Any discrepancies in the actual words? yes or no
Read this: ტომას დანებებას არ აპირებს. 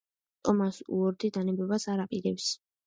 yes